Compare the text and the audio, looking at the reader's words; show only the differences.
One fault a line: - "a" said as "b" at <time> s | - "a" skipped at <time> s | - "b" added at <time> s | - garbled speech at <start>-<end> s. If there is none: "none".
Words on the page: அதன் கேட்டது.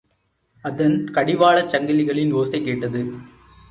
- "கடிவாளச் சங்கிலிகளின் ஓசை" added at 1.1 s